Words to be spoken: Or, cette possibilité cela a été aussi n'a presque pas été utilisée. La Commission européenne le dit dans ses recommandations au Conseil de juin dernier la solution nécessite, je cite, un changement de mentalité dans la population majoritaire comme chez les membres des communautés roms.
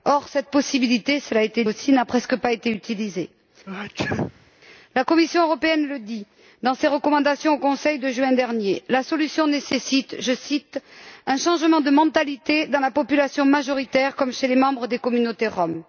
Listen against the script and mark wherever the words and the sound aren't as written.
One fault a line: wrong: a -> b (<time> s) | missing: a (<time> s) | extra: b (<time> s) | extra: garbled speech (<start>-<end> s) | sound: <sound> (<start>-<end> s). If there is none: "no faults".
sound: sneeze (3.7-4.5 s)